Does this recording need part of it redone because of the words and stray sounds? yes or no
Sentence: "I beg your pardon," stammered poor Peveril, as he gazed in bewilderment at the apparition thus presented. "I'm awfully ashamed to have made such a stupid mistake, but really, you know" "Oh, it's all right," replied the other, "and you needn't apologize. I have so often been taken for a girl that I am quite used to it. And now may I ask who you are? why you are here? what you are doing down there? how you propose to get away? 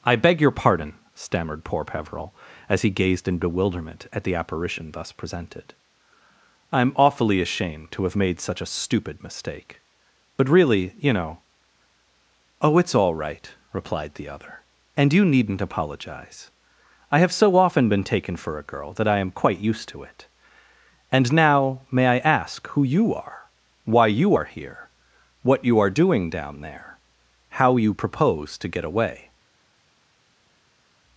no